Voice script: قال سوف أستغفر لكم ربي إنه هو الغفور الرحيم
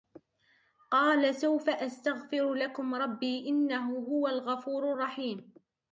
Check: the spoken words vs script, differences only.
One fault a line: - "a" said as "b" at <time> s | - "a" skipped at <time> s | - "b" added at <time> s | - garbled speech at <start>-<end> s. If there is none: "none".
none